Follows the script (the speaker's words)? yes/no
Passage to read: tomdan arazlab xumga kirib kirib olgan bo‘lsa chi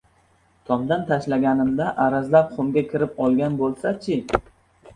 no